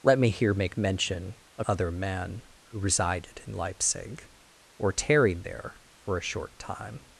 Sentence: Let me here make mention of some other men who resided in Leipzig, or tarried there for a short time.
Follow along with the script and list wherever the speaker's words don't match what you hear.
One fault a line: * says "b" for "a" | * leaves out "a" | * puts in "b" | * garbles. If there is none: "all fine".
* leaves out "some"